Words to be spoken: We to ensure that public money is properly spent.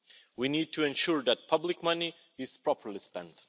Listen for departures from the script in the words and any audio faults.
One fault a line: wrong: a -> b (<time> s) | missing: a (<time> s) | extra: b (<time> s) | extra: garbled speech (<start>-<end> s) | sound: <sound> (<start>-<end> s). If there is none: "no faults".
extra: need (0.5 s)